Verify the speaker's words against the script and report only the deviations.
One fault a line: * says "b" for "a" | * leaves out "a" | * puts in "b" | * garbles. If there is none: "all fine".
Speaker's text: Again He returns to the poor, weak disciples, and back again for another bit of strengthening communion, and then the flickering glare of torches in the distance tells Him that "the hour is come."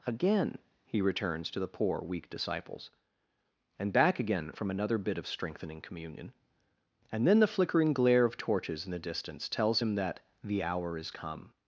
* says "from" for "for"